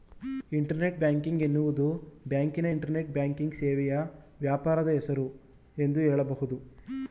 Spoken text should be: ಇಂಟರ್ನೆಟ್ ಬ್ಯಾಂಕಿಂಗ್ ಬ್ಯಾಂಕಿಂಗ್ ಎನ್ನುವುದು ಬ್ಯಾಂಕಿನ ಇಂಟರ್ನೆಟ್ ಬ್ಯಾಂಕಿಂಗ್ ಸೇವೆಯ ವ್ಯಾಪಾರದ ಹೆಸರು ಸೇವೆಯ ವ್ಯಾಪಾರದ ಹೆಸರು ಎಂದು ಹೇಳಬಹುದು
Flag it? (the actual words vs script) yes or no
yes